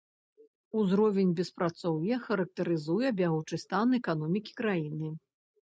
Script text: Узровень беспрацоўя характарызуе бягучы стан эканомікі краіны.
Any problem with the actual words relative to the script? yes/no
no